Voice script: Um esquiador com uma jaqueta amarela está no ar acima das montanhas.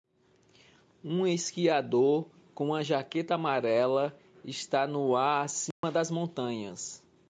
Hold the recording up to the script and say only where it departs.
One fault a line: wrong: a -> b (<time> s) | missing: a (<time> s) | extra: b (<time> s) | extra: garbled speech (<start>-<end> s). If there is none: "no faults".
no faults